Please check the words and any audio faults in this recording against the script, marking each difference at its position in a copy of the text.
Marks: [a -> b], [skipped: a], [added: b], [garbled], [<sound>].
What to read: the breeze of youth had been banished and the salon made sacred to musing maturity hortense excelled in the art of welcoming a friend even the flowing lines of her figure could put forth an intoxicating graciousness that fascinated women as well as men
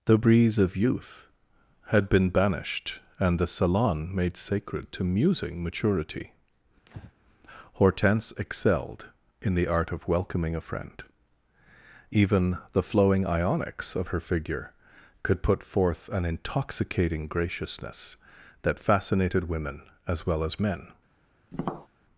the breeze of youth had been banished and the salon made sacred to musing maturity [breath] hortense excelled in the art of welcoming a friend even the flowing [lines -> ionics] of her figure could put forth an intoxicating graciousness that fascinated women as well as men [tap]